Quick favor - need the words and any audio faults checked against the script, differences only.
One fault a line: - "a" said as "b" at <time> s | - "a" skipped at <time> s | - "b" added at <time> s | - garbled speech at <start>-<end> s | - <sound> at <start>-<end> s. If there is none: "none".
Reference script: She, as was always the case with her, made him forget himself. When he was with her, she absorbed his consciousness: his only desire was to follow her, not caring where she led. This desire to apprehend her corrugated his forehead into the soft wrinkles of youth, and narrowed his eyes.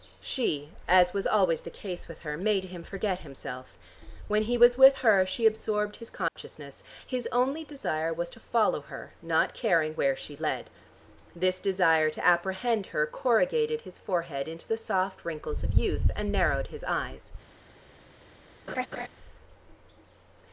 - dropout at 6.3-6.4 s
- laugh at 18.7-19.1 s